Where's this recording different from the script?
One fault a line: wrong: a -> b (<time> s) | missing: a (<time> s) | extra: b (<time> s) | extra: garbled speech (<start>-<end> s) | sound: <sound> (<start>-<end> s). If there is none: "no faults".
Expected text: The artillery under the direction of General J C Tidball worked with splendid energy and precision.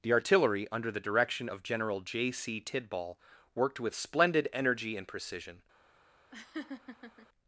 sound: laugh (6.3-7.3 s)